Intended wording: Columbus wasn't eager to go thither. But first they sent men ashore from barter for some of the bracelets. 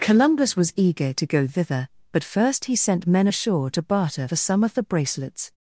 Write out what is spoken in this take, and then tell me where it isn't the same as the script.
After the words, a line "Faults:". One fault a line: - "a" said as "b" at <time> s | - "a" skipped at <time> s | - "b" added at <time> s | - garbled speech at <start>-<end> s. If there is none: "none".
Columbus was eager to go thither. But first he sent men ashore to barter for some of the bracelets.
Faults:
- "wasn't" said as "was" at 0.6 s
- "they" said as "he" at 2.6 s
- "from" said as "to" at 3.7 s